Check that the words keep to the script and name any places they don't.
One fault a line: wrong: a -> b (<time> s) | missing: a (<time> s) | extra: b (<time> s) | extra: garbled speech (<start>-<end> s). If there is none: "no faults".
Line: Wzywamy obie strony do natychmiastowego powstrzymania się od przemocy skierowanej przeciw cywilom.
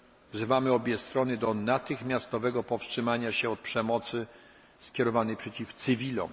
no faults